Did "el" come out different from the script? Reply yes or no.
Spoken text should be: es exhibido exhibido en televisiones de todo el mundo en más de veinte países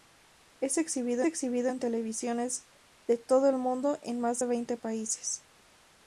no